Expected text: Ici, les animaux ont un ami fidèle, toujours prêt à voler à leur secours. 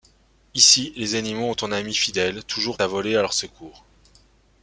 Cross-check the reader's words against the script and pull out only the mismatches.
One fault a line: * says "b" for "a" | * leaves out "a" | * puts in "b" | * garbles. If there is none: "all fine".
* leaves out "prêt"